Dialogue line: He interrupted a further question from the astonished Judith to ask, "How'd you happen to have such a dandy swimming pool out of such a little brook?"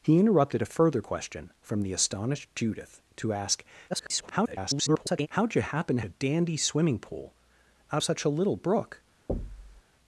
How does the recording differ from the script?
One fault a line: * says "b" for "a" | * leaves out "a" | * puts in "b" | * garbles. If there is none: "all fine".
* garbles
* leaves out "have such"
* leaves out "of"